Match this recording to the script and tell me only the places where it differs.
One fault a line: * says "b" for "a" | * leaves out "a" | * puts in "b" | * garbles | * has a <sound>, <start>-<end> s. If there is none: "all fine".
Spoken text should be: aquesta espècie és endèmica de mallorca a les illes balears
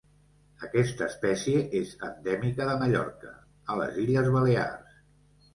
all fine